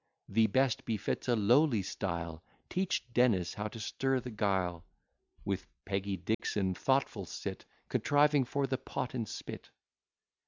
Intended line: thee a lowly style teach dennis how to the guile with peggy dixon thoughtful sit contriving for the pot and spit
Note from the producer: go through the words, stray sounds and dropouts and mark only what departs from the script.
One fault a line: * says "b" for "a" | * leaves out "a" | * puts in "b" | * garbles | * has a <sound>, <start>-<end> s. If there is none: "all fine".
* puts in "best befits"
* puts in "stir"
* has a dropout, 6.3-6.4 s